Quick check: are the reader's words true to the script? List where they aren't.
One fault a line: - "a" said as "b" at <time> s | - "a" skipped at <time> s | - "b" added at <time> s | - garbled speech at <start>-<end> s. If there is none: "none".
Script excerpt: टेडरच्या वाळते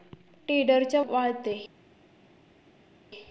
none